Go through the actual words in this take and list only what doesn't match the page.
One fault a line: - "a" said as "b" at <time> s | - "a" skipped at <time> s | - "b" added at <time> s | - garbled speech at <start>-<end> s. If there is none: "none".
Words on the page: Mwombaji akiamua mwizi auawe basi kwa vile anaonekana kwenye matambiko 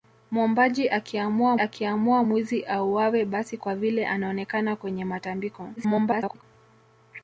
- "akiamua" added at 1.6 s
- garbled speech at 5.8-6.4 s